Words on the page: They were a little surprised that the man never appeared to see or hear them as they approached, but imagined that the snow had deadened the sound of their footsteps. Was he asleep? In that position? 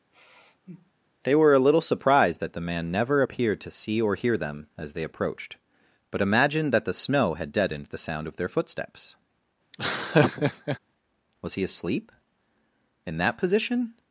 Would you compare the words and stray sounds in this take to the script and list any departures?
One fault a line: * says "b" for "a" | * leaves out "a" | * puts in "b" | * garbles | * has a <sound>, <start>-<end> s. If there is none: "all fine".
* has a sigh, 0.1-0.9 s
* has a laugh, 9.7-10.8 s